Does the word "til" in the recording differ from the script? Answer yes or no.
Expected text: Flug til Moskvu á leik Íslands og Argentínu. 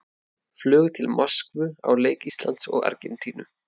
no